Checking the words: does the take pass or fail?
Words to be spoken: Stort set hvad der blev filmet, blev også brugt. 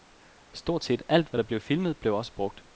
fail